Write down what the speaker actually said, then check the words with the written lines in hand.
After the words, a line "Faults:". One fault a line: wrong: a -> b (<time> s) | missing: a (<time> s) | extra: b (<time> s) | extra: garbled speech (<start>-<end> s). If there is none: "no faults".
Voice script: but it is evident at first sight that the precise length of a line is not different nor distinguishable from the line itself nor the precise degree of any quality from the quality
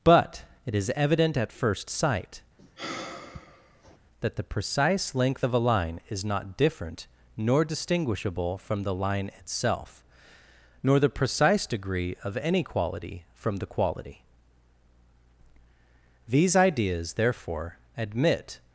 but it is evident at first sight that the precise length of a line is not different nor distinguishable from the line itself nor the precise degree of any quality from the quality these ideas therefore admit
Faults:
extra: these ideas therefore admit (16.3 s)